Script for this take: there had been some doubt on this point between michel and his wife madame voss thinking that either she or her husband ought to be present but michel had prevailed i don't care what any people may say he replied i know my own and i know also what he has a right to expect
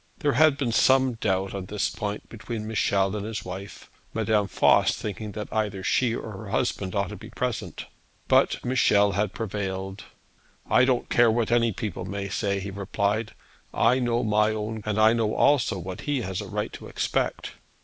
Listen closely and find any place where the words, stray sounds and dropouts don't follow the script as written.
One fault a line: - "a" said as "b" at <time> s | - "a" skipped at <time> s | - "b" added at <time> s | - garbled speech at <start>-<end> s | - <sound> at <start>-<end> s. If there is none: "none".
none